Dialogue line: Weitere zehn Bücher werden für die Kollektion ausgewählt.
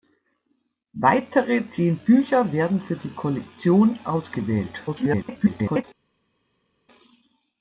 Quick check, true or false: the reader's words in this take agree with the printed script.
false